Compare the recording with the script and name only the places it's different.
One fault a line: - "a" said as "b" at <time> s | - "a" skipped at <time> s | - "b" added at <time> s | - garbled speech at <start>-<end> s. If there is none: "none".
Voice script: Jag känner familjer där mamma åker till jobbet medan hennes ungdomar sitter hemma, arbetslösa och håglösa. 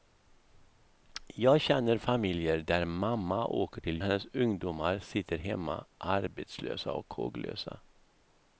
- "jobbet medan" skipped at 4.0 s